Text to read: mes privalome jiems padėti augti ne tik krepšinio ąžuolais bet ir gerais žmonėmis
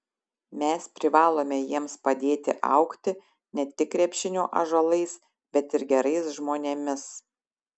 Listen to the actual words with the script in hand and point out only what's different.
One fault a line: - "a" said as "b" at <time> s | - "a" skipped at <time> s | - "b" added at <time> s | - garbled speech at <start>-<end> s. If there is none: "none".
none